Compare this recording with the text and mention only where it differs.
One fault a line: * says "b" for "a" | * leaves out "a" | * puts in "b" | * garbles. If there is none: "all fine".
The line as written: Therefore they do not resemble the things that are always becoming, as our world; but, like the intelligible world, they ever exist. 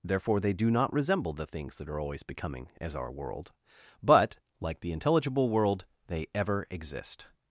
all fine